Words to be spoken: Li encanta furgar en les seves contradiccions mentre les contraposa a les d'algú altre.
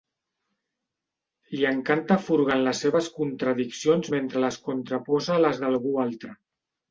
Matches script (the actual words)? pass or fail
pass